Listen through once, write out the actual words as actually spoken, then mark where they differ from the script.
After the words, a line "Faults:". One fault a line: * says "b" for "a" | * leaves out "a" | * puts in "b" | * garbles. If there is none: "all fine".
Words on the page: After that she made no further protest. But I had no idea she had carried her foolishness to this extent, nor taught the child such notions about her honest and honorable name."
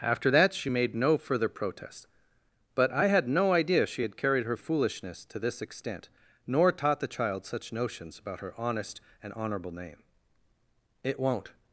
After that she made no further protest. But I had no idea she had carried her foolishness to this extent, nor taught the child such notions about her honest and honorable name." "It won't
Faults:
* puts in "It won't"